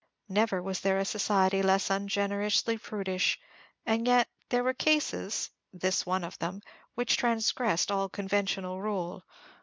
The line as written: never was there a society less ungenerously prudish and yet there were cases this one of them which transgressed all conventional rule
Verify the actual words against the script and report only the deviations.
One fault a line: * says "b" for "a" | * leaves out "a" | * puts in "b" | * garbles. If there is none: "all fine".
all fine